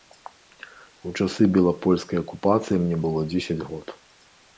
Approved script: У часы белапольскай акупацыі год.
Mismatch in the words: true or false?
true